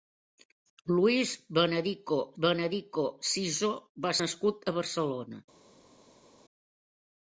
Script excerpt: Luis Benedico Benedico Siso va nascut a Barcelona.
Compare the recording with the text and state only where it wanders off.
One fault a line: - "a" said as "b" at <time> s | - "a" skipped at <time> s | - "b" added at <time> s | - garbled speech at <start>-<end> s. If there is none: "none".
none